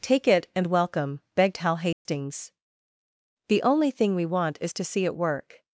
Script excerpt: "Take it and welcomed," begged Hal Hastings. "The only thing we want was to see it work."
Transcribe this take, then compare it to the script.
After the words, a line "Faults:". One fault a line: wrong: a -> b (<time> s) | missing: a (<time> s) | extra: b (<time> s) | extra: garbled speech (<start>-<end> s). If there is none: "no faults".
"Take it and welcome," begged Hal Hastings. "The only thing we want is to see it work."
Faults:
wrong: welcomed -> welcome (0.7 s)
wrong: was -> is (4.6 s)